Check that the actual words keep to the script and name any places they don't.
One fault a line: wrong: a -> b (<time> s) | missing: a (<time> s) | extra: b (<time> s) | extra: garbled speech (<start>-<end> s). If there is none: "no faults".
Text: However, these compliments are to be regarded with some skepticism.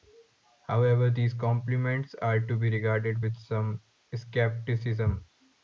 no faults